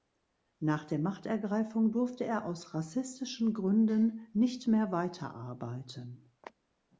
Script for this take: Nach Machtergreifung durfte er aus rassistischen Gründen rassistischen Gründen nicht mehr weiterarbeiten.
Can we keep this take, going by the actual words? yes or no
no